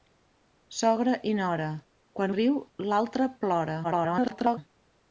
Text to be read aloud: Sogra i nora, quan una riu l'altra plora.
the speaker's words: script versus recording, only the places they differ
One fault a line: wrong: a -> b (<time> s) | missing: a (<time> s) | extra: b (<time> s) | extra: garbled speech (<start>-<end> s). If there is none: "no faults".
missing: una (2.3 s)
extra: garbled speech (3.8-4.6 s)